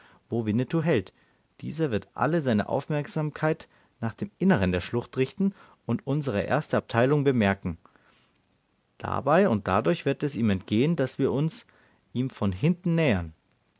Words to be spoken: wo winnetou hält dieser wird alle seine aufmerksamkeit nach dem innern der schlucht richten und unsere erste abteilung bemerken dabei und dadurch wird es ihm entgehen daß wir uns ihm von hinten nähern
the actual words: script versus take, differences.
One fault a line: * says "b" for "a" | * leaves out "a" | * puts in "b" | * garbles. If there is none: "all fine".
all fine